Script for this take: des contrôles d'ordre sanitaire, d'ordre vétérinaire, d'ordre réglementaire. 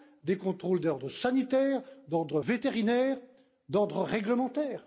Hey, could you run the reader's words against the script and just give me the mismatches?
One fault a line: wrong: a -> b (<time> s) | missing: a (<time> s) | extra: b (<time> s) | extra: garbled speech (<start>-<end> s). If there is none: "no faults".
no faults